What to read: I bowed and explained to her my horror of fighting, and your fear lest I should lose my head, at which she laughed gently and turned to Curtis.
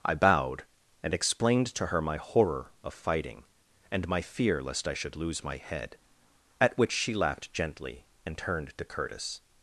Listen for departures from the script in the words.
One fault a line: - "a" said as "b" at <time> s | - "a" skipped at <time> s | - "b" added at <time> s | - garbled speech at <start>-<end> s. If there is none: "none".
- "your" said as "my" at 4.1 s